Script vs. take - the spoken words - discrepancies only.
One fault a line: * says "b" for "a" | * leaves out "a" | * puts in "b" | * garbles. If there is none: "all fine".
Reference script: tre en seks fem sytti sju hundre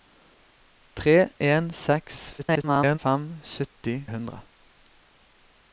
* garbles
* leaves out "sju"